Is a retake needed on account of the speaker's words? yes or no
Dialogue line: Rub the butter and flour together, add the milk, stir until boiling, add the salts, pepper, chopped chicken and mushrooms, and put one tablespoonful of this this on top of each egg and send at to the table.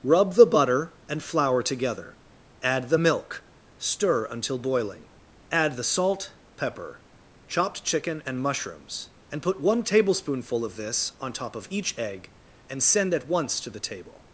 yes